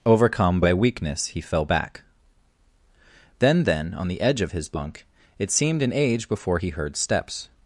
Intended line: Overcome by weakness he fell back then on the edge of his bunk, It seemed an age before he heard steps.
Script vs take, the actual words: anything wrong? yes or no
yes